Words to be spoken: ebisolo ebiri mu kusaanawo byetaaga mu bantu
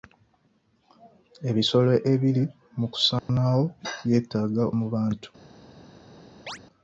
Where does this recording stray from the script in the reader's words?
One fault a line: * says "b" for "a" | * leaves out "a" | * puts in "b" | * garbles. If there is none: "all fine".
all fine